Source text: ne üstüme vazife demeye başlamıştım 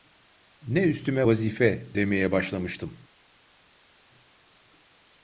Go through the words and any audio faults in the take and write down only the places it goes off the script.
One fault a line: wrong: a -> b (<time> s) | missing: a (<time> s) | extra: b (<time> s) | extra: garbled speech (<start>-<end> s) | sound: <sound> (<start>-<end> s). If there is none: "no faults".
no faults